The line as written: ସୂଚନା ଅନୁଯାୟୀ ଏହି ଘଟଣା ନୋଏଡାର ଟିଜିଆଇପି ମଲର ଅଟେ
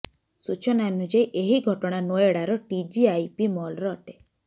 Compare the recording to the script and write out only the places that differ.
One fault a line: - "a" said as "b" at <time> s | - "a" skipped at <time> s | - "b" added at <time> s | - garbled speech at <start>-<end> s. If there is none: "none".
none